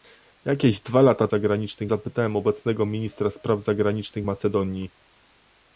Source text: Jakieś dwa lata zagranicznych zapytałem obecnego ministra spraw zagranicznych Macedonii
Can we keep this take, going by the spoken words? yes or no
yes